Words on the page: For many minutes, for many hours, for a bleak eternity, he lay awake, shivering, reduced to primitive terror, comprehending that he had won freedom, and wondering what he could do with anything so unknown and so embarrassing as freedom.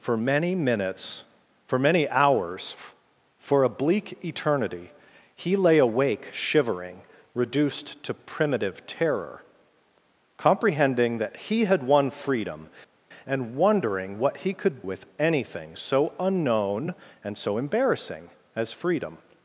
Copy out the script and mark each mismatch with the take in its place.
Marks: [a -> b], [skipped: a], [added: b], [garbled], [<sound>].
For many minutes, for many hours, for a bleak eternity, he lay awake, shivering, reduced to primitive terror, comprehending that he had won freedom, and wondering what he could [skipped: do] with anything so unknown and so embarrassing as freedom.